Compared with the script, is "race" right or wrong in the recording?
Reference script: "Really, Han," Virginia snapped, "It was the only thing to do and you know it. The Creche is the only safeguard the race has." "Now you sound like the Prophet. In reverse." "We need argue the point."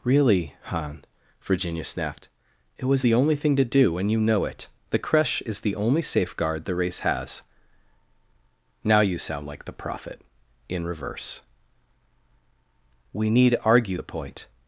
right